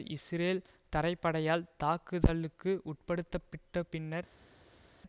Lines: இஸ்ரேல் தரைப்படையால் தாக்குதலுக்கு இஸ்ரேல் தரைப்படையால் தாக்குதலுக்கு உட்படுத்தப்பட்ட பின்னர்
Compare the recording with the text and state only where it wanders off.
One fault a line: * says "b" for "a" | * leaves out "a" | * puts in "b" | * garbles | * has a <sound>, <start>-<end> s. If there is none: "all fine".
* leaves out "இஸ்ரேல் தரைப்படையால் தாக்குதலுக்கு"